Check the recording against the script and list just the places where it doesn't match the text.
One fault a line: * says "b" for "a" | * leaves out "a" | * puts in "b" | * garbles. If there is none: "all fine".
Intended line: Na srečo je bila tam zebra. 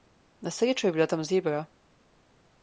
all fine